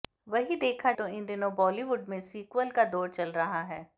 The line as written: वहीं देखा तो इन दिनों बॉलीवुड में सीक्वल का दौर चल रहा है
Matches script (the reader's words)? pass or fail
pass